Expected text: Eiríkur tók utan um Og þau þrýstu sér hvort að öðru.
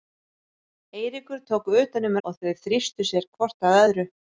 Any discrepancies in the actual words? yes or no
no